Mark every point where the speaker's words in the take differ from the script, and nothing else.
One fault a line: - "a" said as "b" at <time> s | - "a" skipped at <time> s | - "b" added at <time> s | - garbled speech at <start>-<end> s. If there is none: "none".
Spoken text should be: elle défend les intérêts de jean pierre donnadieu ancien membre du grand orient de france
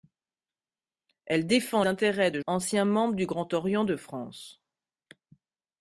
- "les" skipped at 1.8 s
- "jean pierre donnadieu" skipped at 2.4 s